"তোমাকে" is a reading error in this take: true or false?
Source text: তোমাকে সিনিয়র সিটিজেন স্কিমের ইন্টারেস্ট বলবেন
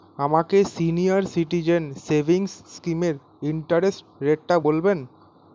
true